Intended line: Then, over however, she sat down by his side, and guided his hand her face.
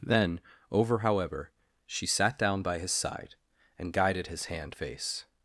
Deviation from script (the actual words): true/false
true